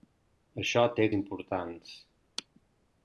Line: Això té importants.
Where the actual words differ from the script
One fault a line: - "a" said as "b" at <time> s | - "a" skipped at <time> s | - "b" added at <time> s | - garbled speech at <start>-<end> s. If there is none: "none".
none